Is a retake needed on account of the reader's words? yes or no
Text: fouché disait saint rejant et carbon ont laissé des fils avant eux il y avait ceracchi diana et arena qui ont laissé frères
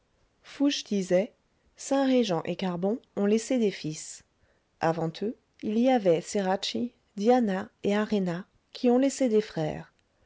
yes